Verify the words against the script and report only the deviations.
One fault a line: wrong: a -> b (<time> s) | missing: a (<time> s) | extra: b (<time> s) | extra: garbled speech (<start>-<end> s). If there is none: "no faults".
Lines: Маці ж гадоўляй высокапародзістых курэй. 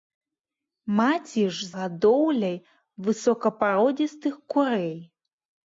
no faults